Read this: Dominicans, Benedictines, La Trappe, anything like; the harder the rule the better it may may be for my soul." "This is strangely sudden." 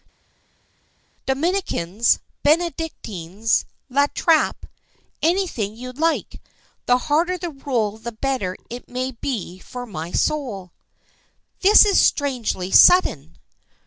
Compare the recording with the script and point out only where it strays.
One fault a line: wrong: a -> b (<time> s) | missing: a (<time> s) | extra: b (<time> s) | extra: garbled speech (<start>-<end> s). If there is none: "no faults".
extra: you (5.7 s)
missing: may (9.1 s)